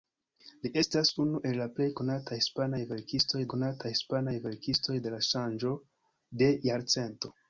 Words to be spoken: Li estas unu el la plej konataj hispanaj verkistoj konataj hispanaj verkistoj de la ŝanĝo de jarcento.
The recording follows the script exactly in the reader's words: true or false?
true